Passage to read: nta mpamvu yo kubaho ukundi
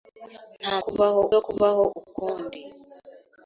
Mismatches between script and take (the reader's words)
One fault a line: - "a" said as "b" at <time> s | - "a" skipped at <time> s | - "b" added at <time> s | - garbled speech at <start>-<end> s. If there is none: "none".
- "mpamvu" said as "kubaho" at 0.8 s